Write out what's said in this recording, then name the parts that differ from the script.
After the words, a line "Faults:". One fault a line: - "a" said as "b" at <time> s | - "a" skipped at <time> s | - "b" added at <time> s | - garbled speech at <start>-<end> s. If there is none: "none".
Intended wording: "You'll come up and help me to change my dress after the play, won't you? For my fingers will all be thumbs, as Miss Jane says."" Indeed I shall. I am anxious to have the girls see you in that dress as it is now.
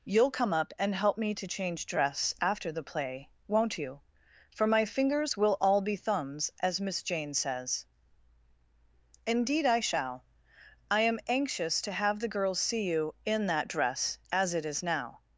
"You'll come up and help me to change dress after the play, won't you? For my fingers will all be thumbs, as Miss Jane says."" Indeed I shall. I am anxious to have the girls see you in that dress as it is now.
Faults:
- "my" skipped at 1.8 s